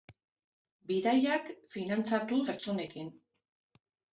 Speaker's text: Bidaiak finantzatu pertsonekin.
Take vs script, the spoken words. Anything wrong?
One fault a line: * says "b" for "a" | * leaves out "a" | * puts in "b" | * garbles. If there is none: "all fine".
all fine